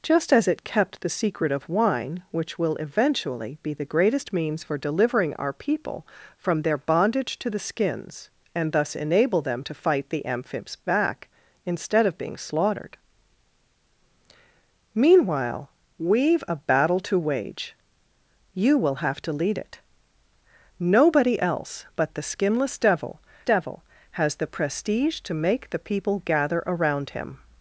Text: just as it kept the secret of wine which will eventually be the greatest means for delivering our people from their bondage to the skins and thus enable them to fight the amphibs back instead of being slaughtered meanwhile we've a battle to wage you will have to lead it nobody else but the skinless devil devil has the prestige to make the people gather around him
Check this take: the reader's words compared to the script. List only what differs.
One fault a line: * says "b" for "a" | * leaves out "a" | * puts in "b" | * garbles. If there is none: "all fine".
all fine